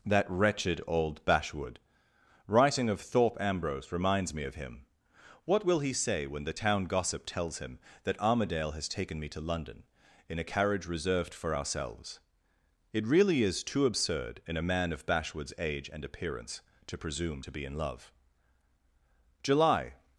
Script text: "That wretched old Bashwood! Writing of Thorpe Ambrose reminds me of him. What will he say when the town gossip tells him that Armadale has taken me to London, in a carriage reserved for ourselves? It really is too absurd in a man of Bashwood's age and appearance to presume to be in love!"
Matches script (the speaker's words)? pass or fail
fail